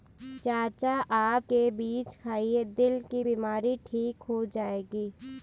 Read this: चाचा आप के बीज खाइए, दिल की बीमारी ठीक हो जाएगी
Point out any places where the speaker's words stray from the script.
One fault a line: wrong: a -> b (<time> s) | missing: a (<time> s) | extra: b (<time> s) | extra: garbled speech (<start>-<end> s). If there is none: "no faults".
no faults